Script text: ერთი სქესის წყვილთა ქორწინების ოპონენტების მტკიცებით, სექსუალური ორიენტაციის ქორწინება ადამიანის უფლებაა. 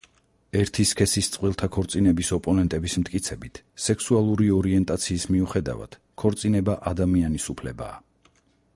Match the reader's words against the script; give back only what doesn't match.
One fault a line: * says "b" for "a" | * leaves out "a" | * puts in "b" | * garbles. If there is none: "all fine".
* puts in "მიუხედავად"